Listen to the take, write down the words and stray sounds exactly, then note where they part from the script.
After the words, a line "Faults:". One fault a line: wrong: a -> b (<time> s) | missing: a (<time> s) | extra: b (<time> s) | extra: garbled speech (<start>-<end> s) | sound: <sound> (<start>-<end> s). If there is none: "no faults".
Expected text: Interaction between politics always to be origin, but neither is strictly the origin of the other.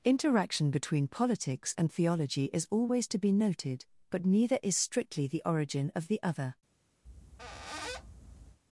Interaction between politics and theology is always to be noted, but neither is strictly the origin of the other.
Faults:
extra: and theology is (1.8 s)
wrong: origin -> noted (3.3 s)
sound: squeak (7.0-8.6 s)